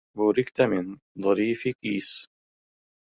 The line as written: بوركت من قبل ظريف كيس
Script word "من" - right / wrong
wrong